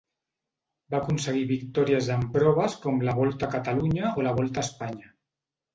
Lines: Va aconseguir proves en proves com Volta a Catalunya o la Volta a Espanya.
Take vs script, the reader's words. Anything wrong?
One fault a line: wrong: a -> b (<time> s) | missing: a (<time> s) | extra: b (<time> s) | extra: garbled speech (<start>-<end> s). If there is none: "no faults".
wrong: proves -> victòries (1.5 s)
extra: la (3.1 s)